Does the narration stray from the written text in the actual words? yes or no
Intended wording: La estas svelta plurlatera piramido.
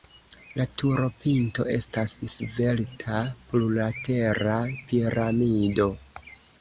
yes